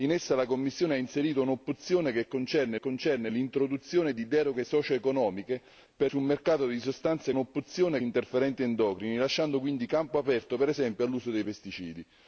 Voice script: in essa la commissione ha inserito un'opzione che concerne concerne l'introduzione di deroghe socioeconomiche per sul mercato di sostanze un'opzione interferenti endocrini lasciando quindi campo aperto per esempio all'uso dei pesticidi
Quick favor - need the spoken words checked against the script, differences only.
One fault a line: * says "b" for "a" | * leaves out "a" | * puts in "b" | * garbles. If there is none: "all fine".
all fine